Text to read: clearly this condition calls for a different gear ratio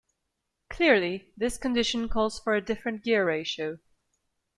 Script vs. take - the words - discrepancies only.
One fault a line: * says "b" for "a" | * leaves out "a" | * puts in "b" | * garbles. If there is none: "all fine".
all fine